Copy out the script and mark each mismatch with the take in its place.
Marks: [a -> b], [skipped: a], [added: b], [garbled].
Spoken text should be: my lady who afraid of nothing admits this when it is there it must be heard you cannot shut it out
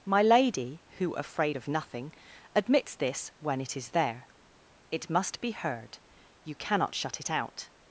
my lady who afraid of nothing admits this when it is there it must be heard you cannot shut it out